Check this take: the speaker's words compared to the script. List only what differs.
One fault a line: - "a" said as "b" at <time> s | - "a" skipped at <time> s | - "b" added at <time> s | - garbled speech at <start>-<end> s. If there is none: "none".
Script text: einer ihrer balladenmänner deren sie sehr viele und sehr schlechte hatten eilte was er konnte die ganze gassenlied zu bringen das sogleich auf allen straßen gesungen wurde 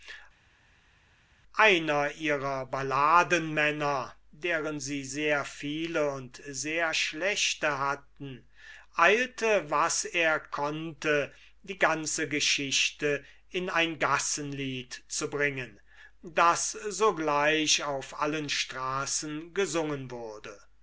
- "geschichte in ein" added at 12.3 s